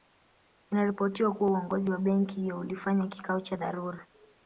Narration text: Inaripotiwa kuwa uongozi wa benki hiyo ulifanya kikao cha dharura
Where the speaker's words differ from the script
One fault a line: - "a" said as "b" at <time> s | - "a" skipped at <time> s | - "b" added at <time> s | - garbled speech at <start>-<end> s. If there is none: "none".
none